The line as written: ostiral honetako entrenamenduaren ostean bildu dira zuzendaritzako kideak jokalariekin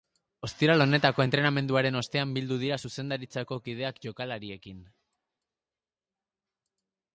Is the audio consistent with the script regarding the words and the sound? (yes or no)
yes